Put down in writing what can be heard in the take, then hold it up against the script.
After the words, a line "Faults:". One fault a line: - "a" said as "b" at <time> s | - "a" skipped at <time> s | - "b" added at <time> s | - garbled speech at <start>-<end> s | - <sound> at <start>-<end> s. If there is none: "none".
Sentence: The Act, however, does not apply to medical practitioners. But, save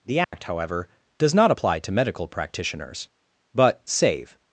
The Act, however, does not apply to medical practitioners. But, save
Faults:
- dropout at 0.2-0.3 s